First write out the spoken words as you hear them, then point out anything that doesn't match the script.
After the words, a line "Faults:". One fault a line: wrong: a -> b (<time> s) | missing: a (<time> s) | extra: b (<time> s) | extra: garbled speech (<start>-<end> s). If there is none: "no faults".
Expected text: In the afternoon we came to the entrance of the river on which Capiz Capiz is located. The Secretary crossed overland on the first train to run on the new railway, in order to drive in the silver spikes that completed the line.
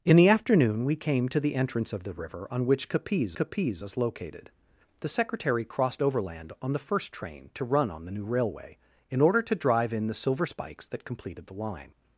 In the afternoon we came to the entrance of the river on which Capiz Capiz is located. The Secretary crossed overland on the first train to run on the new railway, in order to drive in the silver spikes that completed the line.
Faults:
no faults